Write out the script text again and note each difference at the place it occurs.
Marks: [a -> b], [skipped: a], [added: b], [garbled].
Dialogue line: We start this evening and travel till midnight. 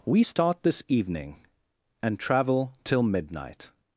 We start this evening and travel till midnight.